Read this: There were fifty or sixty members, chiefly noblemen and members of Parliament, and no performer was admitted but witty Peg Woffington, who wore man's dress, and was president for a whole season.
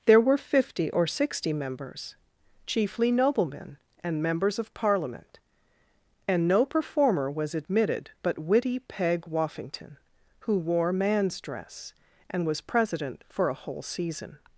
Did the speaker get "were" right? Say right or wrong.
right